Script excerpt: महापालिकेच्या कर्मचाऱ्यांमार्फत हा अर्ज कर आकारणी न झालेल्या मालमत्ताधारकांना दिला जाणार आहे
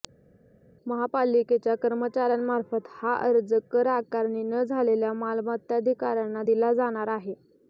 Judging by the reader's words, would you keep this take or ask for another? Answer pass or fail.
pass